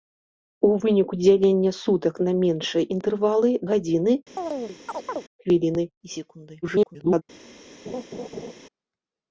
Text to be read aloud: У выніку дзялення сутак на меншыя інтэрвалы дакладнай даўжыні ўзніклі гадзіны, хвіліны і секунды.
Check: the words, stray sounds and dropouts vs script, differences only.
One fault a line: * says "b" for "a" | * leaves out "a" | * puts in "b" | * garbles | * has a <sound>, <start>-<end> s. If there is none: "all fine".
* leaves out "дакладнай даўжыні ўзніклі"
* has a chirp, 4.4-5.2 s
* garbles
* has a laugh, 7.9-8.5 s